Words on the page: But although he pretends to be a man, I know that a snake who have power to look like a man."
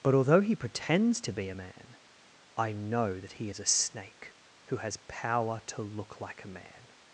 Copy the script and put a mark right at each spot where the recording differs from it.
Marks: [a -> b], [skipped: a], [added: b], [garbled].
But although he pretends to be a man, I know that [added: he is] a snake who [have -> has] power to look like a man."